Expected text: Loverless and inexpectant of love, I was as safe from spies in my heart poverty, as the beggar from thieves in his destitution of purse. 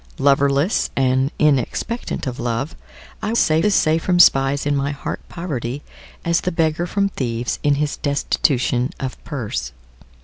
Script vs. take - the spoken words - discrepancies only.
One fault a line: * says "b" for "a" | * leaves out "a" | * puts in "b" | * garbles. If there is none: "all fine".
* says "safe" for "was"